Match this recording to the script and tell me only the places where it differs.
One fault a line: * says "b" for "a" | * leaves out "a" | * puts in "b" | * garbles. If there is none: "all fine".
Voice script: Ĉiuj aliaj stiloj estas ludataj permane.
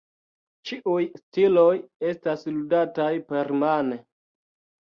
* leaves out "aliaj"